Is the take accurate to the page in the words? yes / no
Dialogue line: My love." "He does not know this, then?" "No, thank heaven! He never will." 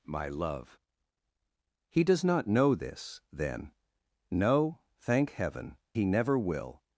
yes